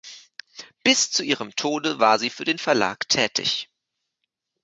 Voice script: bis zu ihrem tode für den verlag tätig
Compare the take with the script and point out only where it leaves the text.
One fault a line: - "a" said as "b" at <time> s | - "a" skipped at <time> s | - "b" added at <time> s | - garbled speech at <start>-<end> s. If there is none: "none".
- "war sie" added at 2.0 s